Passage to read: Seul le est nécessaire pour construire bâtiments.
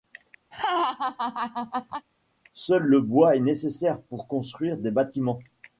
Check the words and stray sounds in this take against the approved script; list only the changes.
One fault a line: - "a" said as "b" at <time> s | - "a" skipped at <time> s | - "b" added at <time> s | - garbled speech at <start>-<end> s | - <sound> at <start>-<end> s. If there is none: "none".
- laugh at 0.5-2.1 s
- "bois" added at 3.0 s
- "des" added at 4.8 s